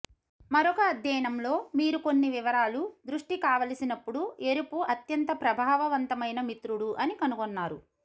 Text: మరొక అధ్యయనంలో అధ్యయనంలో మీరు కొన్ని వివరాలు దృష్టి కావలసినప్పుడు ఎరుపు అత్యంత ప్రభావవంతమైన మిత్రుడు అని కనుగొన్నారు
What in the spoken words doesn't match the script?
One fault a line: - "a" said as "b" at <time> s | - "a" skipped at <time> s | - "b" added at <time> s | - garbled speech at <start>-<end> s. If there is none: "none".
- "అధ్యయనంలో" skipped at 1.5 s